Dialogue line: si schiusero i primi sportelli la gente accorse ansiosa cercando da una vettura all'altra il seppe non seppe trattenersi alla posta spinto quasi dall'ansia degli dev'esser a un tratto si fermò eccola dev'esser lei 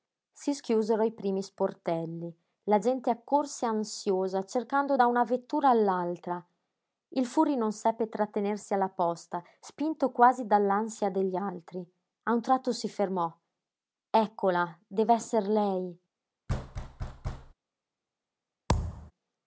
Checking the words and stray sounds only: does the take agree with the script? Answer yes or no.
no